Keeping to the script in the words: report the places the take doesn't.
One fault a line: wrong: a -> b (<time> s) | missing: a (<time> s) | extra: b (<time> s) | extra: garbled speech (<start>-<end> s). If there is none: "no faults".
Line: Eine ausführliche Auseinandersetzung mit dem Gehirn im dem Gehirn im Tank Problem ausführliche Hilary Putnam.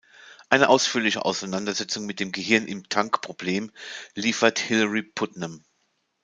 missing: dem Gehirn im (2.9 s)
wrong: ausführliche -> liefert (4.1 s)